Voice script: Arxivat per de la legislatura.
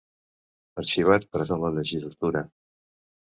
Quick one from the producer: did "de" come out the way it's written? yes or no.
yes